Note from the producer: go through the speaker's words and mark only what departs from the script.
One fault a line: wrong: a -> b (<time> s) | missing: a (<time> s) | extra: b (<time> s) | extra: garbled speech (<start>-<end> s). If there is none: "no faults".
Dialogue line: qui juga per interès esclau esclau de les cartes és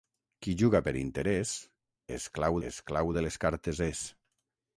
no faults